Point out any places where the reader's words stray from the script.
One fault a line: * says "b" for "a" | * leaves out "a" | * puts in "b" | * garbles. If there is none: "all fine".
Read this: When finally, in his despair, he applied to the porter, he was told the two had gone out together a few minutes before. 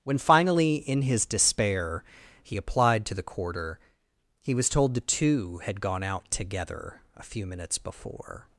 * says "quarter" for "porter"